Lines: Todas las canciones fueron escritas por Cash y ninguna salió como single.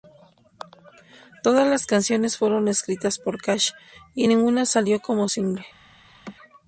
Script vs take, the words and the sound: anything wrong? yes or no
yes